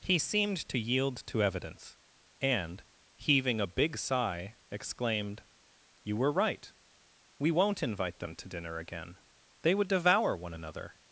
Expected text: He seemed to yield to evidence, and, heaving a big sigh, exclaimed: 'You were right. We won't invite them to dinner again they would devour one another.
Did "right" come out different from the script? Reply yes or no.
no